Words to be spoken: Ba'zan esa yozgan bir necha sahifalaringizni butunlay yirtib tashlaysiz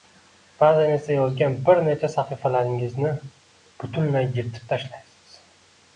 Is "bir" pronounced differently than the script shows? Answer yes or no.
no